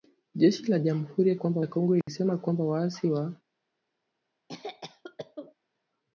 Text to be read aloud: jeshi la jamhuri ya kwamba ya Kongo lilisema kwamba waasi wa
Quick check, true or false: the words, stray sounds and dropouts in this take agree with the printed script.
false